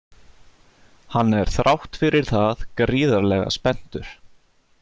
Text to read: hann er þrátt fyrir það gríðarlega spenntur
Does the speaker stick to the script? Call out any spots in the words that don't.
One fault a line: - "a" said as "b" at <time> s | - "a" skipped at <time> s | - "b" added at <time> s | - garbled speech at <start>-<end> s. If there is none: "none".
none